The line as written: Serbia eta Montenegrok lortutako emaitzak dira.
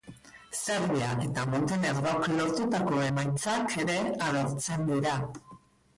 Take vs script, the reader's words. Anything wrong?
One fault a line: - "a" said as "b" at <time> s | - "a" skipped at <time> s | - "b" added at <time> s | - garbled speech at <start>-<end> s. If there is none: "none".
- "ere agertzen" added at 3.8 s